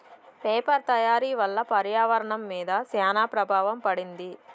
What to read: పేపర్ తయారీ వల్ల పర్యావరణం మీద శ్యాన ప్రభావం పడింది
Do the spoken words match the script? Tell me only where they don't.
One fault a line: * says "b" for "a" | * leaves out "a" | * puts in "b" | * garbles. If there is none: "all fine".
all fine